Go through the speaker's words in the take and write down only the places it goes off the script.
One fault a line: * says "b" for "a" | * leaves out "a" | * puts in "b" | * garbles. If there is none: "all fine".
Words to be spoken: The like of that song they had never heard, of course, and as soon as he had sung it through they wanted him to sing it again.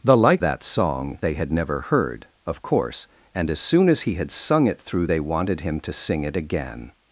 * leaves out "of"